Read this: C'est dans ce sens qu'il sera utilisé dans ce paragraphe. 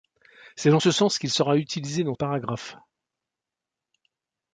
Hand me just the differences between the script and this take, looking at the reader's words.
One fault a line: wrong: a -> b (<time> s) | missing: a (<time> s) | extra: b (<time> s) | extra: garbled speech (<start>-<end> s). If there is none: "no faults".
missing: ce (2.1 s)